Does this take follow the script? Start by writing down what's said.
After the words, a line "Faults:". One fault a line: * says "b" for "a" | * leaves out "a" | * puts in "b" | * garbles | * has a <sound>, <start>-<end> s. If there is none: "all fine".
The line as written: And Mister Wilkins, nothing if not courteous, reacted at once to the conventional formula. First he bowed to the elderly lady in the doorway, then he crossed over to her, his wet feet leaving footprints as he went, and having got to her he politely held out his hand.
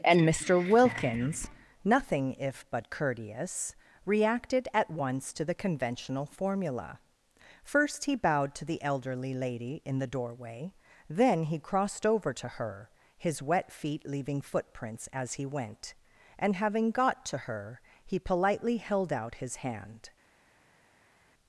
And Mister Wilkins, nothing if but courteous, reacted at once to the conventional formula. First he bowed to the elderly lady in the doorway, then he crossed over to her, his wet feet leaving footprints as he went, and having got to her he politely held out his hand.
Faults:
* says "but" for "not"